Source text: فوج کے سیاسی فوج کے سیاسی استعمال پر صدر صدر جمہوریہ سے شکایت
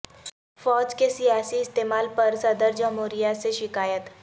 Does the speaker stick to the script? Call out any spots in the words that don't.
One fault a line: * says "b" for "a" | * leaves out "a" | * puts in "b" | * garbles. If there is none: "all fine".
* leaves out "فوج کے سیاسی"
* leaves out "صدر"